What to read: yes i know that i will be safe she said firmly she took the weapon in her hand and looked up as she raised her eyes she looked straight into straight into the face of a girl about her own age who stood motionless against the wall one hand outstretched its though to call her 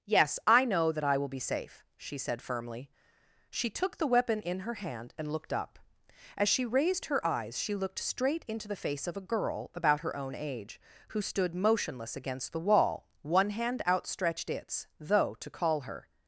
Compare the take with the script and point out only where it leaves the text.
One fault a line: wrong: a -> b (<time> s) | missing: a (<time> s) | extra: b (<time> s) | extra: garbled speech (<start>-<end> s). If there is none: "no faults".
missing: straight into (8.7 s)